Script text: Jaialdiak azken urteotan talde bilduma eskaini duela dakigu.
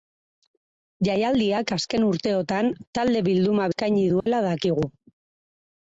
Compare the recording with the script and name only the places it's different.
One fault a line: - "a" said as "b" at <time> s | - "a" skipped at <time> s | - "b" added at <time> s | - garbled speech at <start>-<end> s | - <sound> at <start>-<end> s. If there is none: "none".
- dropout at 4.2-4.3 s